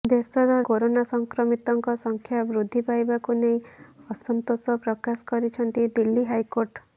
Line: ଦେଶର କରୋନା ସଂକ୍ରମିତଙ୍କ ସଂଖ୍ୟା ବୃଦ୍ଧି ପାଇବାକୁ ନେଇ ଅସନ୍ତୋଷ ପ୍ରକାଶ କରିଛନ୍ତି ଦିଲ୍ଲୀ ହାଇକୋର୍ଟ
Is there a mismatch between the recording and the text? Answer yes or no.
no